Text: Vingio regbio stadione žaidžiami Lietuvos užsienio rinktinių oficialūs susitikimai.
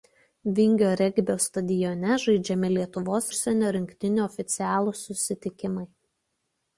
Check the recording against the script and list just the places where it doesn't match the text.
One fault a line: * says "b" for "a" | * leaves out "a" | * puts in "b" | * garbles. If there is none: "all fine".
all fine